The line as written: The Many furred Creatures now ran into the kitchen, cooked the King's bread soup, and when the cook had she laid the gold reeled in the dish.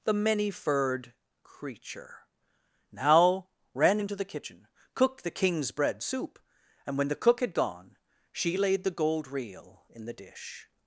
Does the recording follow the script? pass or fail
fail